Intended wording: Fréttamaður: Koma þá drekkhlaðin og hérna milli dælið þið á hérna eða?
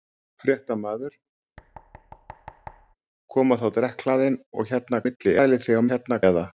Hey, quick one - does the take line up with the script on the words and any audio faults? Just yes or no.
no